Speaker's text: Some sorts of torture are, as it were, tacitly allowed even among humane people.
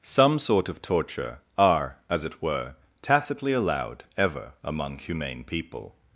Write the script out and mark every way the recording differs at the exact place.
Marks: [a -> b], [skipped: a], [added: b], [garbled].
Some [sorts -> sort] of torture are, as it were, tacitly allowed [even -> ever] among humane people.